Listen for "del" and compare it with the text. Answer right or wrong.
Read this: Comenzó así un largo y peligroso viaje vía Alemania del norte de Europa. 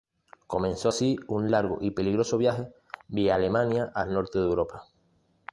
wrong